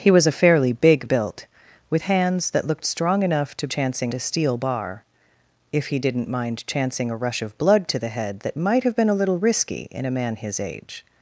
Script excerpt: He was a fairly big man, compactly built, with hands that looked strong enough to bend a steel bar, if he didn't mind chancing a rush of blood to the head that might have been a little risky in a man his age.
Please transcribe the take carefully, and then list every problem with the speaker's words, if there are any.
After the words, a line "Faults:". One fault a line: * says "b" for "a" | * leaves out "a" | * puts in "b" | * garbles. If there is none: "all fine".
He was a fairly big built, with hands that looked strong enough to chancing a steel bar, if he didn't mind chancing a rush of blood to the head that might have been a little risky in a man his age.
Faults:
* leaves out "man compactly"
* says "chancing" for "bend"